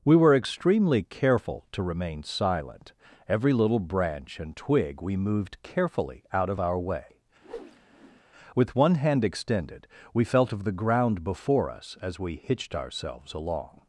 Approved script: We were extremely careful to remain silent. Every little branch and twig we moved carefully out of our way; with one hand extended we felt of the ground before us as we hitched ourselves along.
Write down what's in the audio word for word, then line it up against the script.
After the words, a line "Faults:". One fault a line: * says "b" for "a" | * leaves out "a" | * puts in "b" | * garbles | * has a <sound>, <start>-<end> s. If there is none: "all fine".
We were extremely careful to remain silent. Every little branch and twig we moved carefully out of our way; with one hand extended we felt of the ground before us as we hitched ourselves along.
Faults:
* has a whoosh, 7.4-8.2 s